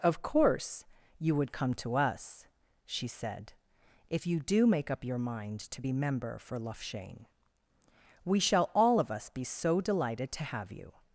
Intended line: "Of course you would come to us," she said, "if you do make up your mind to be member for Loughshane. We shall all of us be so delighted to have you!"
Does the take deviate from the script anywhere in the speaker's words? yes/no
no